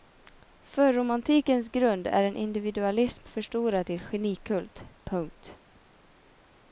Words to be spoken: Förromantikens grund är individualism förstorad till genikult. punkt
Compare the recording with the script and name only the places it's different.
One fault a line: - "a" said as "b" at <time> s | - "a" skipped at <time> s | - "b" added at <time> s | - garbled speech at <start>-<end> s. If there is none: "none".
- "en" added at 2.2 s